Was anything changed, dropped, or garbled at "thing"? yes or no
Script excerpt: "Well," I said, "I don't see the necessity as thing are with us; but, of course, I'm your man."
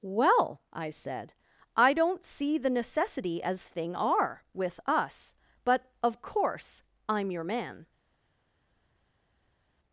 no